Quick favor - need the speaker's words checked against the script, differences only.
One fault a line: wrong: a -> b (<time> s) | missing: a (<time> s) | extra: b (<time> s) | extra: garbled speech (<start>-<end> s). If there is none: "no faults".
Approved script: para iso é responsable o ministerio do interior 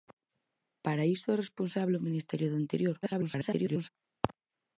extra: garbled speech (3.0-3.9 s)